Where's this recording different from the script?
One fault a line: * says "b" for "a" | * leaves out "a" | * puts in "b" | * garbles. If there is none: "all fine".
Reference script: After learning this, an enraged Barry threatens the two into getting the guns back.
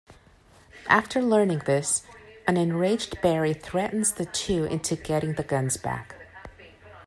all fine